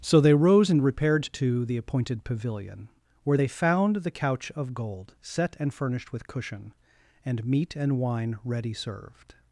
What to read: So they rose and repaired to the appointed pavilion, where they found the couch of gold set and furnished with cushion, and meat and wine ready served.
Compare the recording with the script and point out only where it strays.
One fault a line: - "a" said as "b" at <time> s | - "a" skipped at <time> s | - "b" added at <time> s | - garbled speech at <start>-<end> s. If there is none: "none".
none